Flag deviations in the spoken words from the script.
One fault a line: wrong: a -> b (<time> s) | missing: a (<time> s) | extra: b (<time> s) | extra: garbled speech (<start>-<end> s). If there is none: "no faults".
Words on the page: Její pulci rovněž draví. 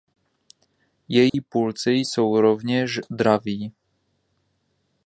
extra: jsou (1.9 s)